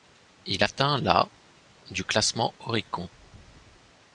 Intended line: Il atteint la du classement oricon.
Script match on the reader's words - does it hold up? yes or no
yes